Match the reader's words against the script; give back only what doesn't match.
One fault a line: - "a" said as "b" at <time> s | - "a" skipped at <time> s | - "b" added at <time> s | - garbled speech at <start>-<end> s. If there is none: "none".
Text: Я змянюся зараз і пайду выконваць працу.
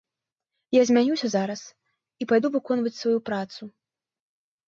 - "сваю" added at 3.0 s